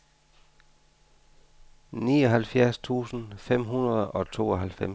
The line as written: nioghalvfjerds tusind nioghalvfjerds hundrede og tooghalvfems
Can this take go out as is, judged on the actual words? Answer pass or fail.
fail